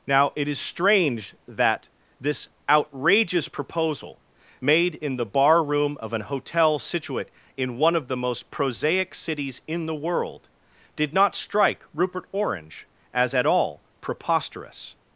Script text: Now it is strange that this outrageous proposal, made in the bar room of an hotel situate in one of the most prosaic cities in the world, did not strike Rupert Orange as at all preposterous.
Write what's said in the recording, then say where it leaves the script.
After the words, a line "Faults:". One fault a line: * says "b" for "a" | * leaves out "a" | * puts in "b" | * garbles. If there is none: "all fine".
Now it is strange that this outrageous proposal, made in the bar room of an hotel situate in one of the most prosaic cities in the world, did not strike Rupert Orange as at all preposterous.
Faults:
all fine